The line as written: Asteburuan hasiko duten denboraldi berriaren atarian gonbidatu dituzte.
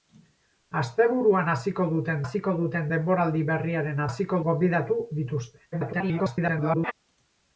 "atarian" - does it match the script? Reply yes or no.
no